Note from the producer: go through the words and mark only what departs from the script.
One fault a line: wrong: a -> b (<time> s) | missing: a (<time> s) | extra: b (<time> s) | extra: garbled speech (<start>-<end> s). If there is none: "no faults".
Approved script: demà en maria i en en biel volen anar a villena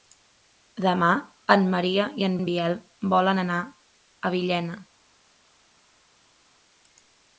no faults